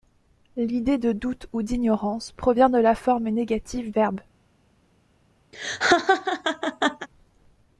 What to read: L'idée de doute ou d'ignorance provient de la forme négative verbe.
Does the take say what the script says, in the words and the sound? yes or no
no